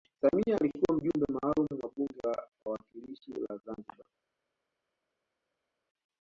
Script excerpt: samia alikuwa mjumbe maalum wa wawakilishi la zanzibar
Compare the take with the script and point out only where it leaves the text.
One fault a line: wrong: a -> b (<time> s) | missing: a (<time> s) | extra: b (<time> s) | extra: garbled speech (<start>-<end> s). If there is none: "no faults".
extra: bunge la (2.0 s)